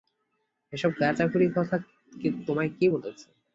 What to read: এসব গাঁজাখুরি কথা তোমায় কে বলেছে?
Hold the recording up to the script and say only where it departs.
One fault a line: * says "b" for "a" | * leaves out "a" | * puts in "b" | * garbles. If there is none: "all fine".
all fine